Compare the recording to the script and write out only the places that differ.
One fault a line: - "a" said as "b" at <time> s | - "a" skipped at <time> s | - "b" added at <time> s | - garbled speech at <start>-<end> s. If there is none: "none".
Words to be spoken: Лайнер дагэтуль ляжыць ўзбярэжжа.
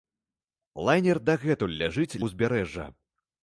none